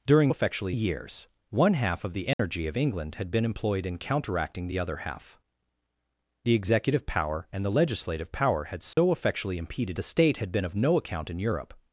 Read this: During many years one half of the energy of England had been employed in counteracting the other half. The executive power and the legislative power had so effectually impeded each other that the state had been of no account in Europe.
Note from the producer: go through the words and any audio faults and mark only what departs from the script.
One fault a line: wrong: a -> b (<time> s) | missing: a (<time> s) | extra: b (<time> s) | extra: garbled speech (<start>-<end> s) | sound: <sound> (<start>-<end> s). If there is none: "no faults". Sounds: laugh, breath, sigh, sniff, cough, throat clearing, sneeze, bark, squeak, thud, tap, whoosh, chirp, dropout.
wrong: many -> effectually (0.3 s)
sound: dropout (2.3-2.4 s)
sound: dropout (8.9-9.0 s)
missing: each other that (10.0 s)